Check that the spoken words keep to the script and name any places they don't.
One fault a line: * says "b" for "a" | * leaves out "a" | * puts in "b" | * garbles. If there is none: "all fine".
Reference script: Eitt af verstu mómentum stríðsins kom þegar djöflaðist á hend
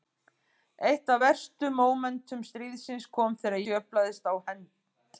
all fine